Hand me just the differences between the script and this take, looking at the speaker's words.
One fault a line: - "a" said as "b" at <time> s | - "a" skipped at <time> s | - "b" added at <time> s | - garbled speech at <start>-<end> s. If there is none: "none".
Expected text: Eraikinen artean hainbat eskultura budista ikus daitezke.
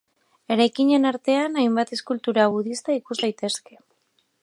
none